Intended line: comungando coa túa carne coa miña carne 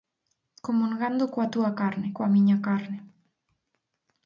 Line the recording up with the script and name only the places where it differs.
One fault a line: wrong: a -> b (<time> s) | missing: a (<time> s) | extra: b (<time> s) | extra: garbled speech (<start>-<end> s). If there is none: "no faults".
no faults